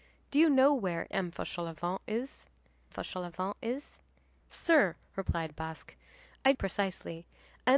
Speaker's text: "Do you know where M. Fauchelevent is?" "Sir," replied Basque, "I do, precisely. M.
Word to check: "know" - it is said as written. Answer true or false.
true